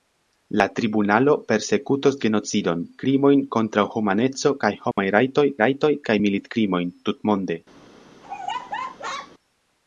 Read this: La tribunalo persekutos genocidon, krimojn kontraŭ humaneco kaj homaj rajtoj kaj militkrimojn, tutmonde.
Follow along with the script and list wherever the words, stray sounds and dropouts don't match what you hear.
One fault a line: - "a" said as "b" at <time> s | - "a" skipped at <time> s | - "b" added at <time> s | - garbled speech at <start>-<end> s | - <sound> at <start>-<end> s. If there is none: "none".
- dropout at 4.9-5.0 s
- "rajtoj" added at 5.6 s
- laugh at 8.2-9.3 s